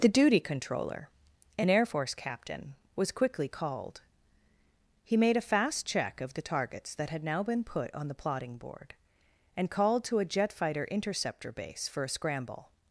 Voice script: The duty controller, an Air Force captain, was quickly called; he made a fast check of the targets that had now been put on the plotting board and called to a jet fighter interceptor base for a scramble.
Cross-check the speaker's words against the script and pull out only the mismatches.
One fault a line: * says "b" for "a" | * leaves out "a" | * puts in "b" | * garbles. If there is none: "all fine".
all fine